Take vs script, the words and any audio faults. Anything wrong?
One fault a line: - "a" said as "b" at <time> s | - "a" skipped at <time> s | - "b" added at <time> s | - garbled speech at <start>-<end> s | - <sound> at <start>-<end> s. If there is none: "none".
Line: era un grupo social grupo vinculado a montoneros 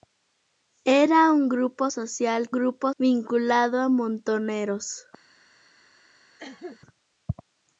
- cough at 6.4-6.8 s